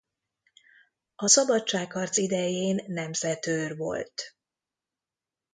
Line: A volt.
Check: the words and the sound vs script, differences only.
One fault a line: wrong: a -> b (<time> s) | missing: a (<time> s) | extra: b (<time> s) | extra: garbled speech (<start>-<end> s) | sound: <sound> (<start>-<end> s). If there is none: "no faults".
extra: szabadságharc idején nemzetőr (1.2 s)